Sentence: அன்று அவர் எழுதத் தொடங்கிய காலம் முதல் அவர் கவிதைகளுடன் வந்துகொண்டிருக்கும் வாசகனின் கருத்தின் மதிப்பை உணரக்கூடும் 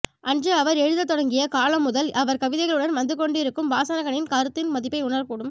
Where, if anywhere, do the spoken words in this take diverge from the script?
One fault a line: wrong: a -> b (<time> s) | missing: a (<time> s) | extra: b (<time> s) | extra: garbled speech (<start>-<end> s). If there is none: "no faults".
no faults